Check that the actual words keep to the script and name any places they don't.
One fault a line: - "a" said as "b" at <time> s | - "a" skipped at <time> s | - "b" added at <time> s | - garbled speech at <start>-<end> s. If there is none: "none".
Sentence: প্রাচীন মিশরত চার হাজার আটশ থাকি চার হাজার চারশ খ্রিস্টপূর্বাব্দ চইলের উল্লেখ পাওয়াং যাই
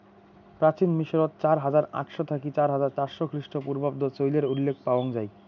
none